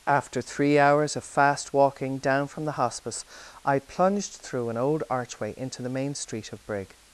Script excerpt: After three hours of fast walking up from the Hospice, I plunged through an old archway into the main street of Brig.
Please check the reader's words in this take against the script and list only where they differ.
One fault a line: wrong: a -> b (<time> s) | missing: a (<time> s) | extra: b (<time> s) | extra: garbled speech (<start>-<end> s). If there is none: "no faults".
wrong: up -> down (2.2 s)